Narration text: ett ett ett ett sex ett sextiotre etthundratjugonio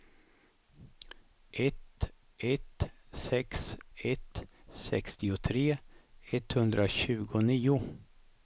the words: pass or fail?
fail